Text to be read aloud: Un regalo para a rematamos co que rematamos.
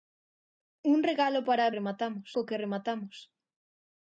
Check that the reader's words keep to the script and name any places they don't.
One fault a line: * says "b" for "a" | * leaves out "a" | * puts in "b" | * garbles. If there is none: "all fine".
all fine